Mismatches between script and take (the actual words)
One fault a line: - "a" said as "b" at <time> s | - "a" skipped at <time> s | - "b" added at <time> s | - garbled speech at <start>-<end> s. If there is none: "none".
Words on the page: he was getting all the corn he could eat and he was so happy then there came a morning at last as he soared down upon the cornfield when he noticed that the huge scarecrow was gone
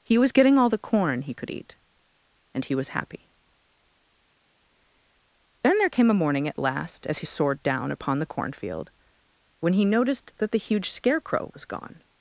- "so" skipped at 2.9 s